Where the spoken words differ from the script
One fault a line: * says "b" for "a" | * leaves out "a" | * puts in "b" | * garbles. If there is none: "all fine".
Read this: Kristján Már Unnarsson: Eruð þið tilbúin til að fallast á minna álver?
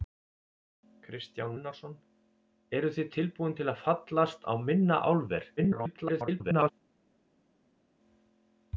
* leaves out "Már"
* garbles